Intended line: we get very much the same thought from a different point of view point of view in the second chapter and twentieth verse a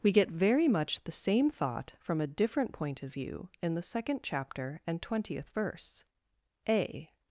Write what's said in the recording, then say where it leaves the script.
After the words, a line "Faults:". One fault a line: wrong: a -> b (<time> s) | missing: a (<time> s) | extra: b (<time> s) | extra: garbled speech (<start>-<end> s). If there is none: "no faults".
we get very much the same thought from a different point of view in the second chapter and twentieth verse a
Faults:
missing: point of view (3.5 s)